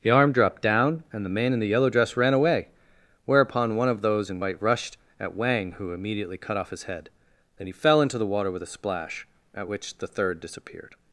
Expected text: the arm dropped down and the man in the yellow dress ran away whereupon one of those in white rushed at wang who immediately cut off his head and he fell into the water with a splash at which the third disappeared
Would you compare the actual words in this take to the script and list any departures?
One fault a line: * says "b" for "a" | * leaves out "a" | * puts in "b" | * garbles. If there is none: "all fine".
* says "then" for "and"